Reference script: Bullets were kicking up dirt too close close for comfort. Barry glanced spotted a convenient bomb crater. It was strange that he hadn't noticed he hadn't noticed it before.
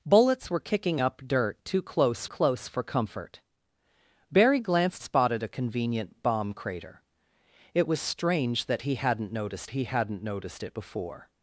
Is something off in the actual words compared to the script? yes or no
no